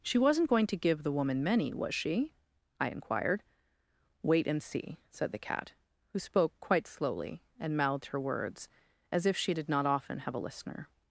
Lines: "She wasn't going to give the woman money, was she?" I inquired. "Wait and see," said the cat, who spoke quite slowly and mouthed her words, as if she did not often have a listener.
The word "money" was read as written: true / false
false